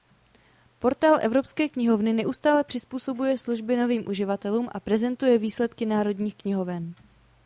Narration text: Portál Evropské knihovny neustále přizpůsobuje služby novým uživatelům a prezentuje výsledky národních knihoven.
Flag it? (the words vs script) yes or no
no